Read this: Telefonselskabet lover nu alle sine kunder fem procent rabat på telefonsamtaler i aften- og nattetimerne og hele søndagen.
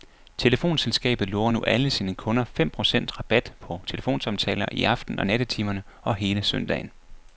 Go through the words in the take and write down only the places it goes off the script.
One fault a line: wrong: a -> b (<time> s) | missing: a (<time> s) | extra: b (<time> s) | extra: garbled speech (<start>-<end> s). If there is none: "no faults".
no faults